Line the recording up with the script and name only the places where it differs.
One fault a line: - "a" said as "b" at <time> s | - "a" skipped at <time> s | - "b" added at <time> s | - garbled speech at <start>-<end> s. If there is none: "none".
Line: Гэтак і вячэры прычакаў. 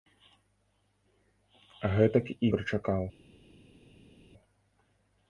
- "вячэры" skipped at 2.5 s